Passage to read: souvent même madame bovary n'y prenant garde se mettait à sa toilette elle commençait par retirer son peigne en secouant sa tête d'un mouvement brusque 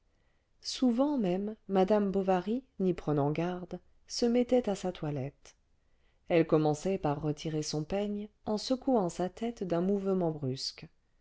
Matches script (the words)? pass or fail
pass